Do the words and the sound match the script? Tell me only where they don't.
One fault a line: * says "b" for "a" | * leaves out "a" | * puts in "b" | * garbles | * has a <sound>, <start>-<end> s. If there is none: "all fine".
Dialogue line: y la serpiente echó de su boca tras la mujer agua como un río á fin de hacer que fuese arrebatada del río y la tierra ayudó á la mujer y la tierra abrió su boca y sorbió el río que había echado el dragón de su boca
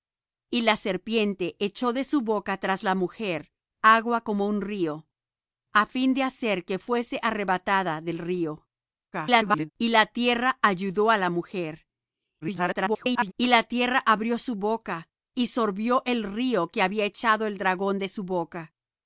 * garbles
* garbles